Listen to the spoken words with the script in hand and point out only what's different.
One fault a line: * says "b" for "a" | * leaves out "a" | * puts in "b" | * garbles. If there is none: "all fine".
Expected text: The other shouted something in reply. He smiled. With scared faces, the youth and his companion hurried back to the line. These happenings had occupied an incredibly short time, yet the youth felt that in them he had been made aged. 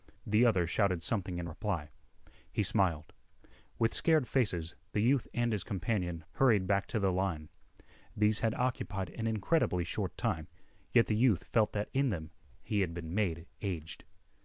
* leaves out "happenings"